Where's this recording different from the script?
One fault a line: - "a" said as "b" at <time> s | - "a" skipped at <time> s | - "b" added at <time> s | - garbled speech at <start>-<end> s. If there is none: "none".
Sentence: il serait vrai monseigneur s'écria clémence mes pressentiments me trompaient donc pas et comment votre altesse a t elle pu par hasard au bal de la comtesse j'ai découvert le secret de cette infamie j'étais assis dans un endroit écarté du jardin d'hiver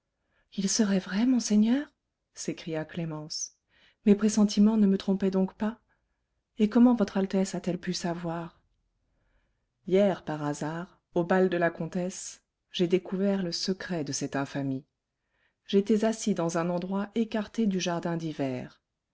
- "ne" added at 4.8 s
- "savoir hier" added at 7.9 s